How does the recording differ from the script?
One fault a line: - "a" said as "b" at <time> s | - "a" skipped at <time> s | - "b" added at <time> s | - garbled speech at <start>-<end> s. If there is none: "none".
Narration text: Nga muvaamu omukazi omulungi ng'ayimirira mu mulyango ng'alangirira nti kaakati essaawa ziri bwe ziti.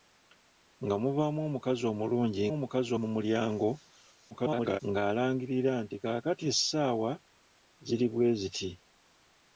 - "ng'ayimirira" said as "omukazi" at 2.5 s
- garbled speech at 4.3-4.8 s